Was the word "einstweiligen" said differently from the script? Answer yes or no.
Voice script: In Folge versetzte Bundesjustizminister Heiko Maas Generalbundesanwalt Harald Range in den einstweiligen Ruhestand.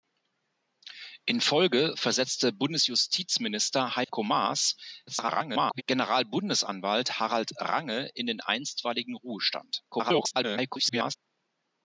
no